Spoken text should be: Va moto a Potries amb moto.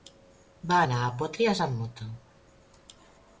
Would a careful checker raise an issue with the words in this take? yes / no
yes